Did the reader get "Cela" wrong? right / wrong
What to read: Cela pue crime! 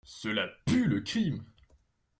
right